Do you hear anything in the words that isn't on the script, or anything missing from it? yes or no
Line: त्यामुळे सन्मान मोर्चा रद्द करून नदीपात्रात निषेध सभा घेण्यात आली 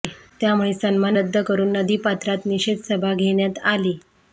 yes